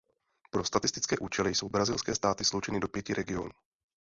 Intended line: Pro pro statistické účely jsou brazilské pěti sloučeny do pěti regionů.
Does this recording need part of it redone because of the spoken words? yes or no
yes